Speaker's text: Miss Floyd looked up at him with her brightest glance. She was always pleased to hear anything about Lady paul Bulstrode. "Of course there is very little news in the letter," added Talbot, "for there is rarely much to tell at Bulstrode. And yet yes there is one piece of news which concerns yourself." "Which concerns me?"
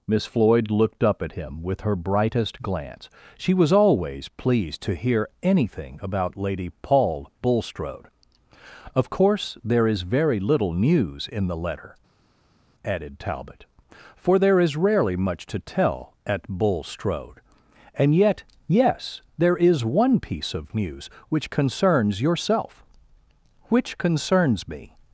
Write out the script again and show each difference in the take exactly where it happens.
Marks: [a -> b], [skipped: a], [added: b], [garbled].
Miss Floyd looked up at him with her brightest glance. She was always pleased to hear anything about Lady paul Bulstrode. "Of course there is very little news in the letter," added Talbot, "for there is rarely much to tell at Bulstrode. And yet yes there is one piece of news which concerns yourself." "Which concerns me?"